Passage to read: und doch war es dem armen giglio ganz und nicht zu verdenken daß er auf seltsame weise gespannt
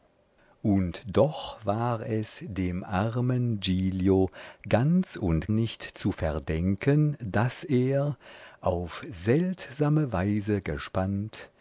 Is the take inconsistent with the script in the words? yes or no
no